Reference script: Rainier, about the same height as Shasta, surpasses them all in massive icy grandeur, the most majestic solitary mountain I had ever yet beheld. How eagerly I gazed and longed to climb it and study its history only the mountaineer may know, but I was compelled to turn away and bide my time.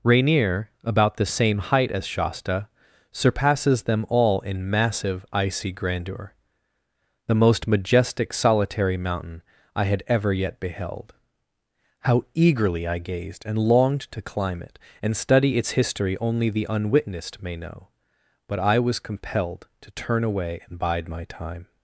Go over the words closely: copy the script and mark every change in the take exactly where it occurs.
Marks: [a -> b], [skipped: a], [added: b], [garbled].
Rainier, about the same height as Shasta, surpasses them all in massive icy grandeur, the most majestic solitary mountain I had ever yet beheld. How eagerly I gazed and longed to climb it and study its history only the [mountaineer -> unwitnessed] may know, but I was compelled to turn away and bide my time.